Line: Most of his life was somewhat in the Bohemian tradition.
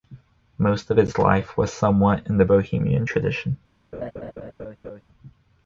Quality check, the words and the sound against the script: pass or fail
fail